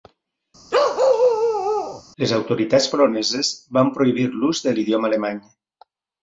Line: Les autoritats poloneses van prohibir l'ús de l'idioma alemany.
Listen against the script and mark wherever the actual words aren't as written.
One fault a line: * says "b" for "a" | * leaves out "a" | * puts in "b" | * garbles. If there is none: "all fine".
all fine